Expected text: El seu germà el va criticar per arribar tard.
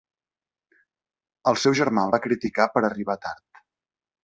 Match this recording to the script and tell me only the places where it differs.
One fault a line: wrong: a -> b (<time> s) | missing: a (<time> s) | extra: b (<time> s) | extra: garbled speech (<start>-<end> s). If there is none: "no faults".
no faults